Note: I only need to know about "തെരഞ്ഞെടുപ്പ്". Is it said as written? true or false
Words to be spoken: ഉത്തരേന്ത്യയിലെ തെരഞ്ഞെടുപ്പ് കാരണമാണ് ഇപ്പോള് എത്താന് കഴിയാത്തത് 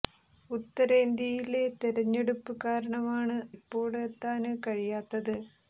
true